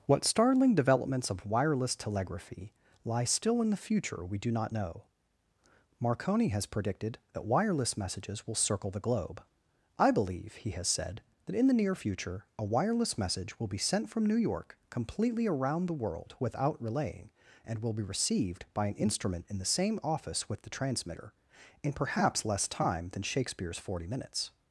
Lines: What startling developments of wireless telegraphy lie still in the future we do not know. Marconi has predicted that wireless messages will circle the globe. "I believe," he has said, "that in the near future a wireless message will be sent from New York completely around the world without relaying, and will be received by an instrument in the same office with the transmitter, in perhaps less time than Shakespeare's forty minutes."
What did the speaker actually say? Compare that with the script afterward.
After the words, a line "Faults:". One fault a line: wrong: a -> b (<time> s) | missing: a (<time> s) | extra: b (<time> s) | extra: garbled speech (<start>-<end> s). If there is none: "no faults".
What startling developments of wireless telegraphy lie still in the future we do not know. Marconi has predicted that wireless messages will circle the globe. "I believe," he has said, "that in the near future a wireless message will be sent from New York completely around the world without relaying, and will be received by an instrument in the same office with the transmitter, in perhaps less time than Shakespeare's forty minutes."
Faults:
no faults